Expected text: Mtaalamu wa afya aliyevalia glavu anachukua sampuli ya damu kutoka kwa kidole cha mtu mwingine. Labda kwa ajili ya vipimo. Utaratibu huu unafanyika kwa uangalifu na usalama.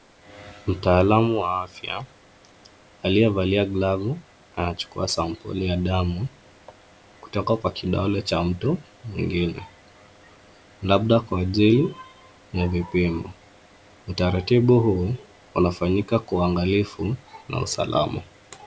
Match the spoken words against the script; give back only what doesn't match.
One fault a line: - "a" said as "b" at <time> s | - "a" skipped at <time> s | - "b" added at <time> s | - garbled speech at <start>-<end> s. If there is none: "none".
none